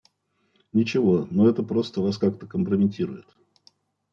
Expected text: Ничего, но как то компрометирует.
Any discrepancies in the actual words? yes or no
yes